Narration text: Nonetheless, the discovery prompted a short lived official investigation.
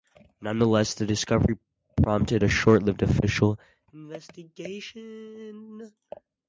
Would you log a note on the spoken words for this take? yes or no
no